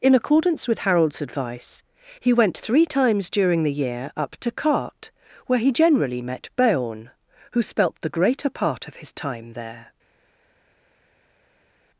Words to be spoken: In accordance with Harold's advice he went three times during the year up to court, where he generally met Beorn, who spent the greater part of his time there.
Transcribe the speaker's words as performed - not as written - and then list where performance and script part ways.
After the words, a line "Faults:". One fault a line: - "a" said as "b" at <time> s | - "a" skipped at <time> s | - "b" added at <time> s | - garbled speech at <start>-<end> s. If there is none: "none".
In accordance with Harold's advice he went three times during the year up to cart, where he generally met Beorn, who spelt the greater part of his time there.
Faults:
- "court" said as "cart" at 4.5 s
- "spent" said as "spelt" at 7.6 s